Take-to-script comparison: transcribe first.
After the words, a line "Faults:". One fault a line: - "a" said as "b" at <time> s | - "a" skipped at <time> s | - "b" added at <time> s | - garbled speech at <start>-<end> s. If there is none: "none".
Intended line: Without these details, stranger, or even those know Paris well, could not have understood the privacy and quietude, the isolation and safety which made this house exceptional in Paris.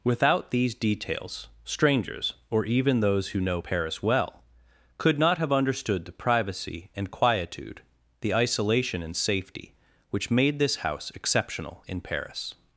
Without these details, strangers, or even those who know Paris well, could not have understood the privacy and quietude, the isolation and safety which made this house exceptional in Paris.
Faults:
- "stranger" said as "strangers" at 1.6 s
- "who" added at 3.3 s